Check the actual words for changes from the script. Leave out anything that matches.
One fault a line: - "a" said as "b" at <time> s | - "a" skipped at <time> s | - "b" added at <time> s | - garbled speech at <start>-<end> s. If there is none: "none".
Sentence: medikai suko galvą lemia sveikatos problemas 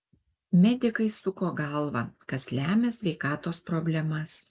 - "kas" added at 2.3 s